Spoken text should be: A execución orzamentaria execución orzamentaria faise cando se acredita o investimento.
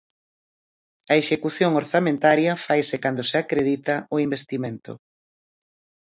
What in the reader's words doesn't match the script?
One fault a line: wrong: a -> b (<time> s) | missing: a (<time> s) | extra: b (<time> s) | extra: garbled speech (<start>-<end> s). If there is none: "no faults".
missing: execución orzamentaria (2.5 s)